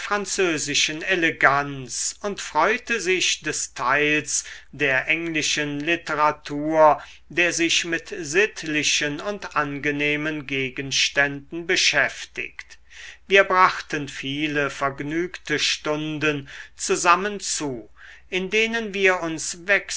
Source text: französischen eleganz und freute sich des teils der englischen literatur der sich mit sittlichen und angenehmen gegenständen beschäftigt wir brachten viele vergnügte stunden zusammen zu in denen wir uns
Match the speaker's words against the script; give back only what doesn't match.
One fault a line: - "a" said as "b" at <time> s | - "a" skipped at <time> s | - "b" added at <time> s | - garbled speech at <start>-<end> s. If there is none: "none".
none